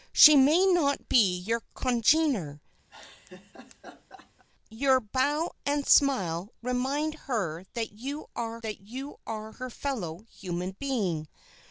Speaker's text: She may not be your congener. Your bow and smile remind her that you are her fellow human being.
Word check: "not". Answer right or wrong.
right